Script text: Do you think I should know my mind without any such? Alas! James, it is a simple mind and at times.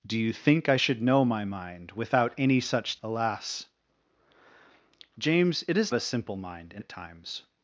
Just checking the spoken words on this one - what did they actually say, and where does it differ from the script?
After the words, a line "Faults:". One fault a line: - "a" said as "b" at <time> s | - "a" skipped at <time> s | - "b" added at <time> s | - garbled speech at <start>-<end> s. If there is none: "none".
Do you think I should know my mind without any such? Alas! James, it is a simple mind and at times.
Faults:
none